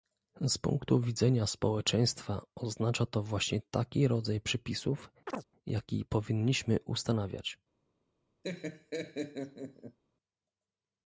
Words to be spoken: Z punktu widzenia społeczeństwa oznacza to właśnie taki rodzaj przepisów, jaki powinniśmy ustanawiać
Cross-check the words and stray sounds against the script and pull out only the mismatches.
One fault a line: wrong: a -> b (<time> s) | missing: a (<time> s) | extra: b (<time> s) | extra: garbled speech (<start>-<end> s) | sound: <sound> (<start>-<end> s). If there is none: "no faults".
sound: chirp (5.3-5.4 s)
sound: laugh (8.4-10.0 s)